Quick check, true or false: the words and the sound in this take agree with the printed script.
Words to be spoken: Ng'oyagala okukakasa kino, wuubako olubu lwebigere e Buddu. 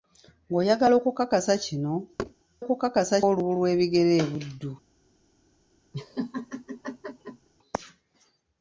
false